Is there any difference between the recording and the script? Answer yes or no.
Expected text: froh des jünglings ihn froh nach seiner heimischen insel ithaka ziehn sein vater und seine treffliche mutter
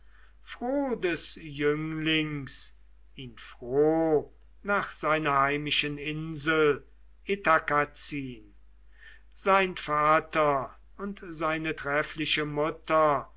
no